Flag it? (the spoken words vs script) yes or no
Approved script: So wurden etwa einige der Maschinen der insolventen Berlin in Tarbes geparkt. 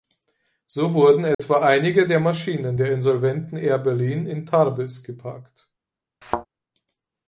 yes